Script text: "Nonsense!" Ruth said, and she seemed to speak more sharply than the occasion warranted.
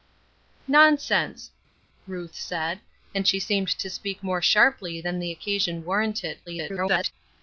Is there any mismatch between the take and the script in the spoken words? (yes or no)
yes